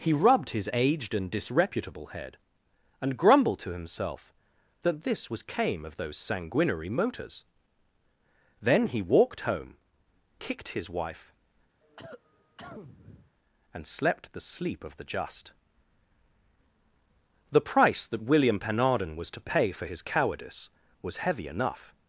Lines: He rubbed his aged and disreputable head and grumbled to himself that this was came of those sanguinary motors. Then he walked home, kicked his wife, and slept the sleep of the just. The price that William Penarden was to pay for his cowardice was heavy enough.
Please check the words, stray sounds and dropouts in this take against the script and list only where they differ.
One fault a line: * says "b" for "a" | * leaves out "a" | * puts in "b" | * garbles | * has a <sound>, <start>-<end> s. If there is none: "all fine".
* has a cough, 11.8-13.3 s